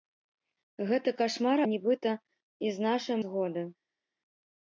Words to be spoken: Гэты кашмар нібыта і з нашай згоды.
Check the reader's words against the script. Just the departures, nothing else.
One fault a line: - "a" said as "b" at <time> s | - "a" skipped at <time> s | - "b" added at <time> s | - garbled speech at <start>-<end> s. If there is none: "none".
none